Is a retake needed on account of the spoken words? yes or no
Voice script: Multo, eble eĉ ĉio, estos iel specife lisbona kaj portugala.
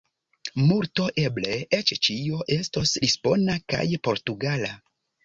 yes